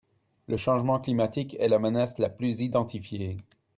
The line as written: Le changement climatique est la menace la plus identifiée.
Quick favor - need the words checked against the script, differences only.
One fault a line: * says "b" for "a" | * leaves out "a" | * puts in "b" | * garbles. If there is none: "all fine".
all fine